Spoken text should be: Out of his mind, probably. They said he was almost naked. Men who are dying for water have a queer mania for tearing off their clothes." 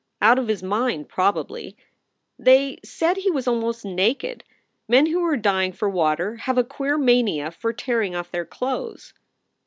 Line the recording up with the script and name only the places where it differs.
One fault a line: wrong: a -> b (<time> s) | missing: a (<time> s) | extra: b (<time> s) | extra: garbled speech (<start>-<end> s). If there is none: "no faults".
no faults